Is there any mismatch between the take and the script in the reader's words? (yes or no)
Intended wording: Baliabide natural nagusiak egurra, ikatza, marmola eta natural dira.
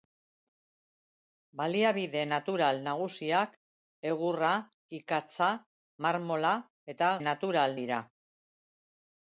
no